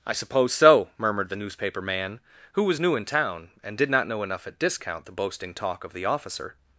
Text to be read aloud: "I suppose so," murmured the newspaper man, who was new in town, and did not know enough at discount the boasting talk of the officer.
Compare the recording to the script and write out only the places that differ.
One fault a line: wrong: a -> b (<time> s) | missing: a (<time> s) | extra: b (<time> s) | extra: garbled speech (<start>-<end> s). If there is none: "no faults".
no faults